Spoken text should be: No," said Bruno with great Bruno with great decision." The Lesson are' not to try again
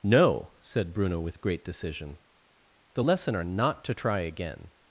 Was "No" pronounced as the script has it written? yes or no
yes